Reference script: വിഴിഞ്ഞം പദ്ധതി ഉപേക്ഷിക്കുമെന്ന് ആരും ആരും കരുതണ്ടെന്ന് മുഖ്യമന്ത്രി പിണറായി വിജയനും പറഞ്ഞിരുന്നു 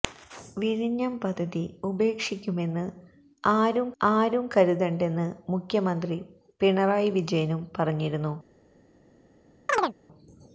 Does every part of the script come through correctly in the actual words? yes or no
yes